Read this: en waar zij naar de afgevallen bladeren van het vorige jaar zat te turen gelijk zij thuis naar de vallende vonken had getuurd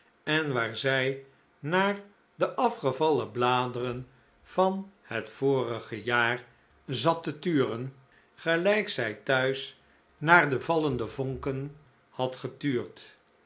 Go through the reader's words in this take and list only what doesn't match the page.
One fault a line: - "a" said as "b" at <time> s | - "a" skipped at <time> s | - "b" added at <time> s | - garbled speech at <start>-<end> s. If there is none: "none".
none